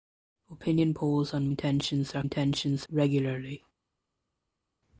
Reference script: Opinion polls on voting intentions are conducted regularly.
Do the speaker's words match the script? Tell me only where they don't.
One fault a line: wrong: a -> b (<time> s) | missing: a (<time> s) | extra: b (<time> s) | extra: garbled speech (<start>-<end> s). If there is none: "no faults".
missing: voting (1.5 s)
wrong: conducted -> intentions (2.2 s)